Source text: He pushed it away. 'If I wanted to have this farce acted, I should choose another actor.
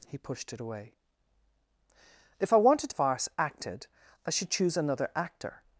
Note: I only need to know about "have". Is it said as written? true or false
false